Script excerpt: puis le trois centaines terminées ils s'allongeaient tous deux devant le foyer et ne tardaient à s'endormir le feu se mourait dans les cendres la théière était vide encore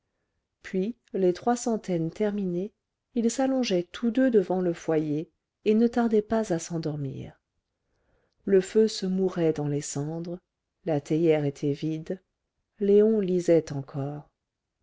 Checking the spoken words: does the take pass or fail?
fail